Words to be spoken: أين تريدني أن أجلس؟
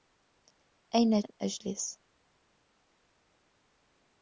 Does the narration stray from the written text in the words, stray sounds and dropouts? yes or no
yes